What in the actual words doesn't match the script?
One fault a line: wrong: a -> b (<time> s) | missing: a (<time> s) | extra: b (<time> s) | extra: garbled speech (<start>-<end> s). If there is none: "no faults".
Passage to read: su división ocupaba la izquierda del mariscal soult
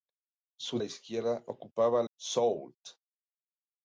wrong: división -> izquierda (0.8 s)
missing: izquierda del mariscal (2.1 s)